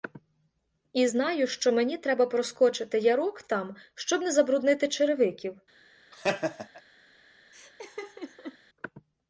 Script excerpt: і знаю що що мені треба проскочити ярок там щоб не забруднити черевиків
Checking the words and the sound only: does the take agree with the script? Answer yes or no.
no